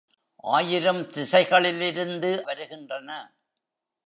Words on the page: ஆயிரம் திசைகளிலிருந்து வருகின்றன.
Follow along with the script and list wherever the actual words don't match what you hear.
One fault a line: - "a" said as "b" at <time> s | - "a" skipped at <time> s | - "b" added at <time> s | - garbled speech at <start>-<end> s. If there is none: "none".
none